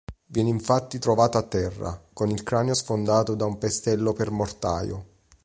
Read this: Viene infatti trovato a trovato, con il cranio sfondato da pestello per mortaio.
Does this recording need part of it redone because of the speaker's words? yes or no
yes